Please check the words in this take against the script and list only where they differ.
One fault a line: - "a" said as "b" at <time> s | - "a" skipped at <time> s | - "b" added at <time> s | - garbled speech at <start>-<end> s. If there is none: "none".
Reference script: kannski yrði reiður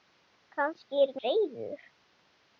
none